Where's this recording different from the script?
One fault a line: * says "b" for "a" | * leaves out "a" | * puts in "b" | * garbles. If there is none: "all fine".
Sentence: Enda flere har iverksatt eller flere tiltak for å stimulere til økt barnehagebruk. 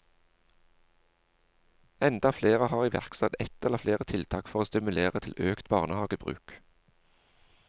* puts in "ett"